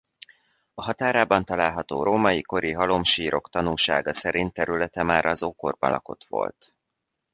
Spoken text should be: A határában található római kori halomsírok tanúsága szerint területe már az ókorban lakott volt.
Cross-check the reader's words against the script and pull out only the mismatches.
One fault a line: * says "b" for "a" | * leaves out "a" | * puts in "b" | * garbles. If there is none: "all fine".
all fine